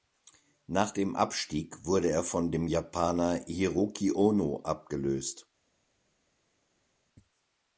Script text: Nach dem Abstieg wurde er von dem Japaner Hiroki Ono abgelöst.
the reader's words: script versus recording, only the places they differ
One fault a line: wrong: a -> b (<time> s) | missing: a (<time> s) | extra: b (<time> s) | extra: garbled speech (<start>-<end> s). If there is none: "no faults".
no faults